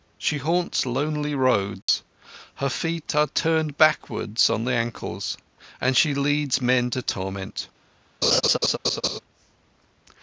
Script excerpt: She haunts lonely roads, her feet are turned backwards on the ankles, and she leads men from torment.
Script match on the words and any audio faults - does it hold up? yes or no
no